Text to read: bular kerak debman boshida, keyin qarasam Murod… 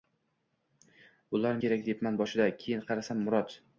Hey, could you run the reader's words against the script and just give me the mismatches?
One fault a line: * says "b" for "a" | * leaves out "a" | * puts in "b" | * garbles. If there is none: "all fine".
all fine